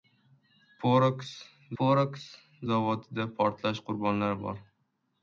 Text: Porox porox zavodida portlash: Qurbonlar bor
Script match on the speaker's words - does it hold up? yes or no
yes